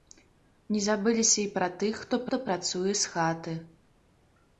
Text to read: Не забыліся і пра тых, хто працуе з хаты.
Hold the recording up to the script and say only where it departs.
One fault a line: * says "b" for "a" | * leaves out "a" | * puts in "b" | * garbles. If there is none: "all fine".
* puts in "хто"